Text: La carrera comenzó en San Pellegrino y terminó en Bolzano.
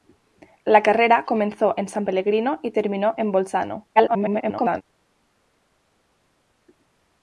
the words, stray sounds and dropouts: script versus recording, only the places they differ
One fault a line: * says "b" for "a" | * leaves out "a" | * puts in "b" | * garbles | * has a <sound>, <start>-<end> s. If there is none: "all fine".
* garbles